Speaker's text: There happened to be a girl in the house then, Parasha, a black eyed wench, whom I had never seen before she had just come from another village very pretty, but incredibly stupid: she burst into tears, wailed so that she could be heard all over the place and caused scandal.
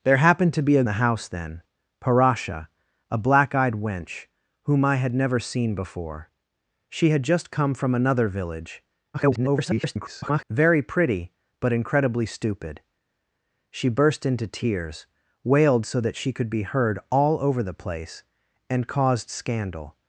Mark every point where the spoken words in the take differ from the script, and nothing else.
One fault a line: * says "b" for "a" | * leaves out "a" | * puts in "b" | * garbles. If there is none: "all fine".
* leaves out "girl in"
* garbles